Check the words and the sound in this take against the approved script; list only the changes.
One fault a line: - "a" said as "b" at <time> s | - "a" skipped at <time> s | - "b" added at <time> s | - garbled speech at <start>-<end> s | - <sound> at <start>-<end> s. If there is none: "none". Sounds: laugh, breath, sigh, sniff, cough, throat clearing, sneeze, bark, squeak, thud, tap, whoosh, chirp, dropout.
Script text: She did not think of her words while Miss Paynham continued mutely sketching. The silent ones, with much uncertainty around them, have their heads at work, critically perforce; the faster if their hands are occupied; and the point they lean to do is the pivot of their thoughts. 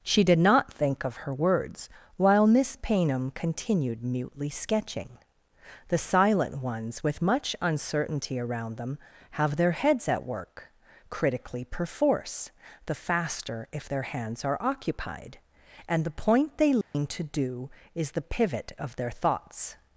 - dropout at 16.8-16.9 s